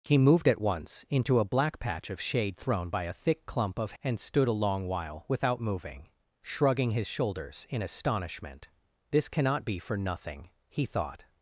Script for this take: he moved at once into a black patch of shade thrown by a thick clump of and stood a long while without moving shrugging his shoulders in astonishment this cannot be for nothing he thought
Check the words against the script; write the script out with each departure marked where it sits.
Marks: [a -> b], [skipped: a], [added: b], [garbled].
he moved at once into a black patch of shade thrown by a thick clump of and stood a long while without moving shrugging his shoulders in astonishment this cannot be for nothing he thought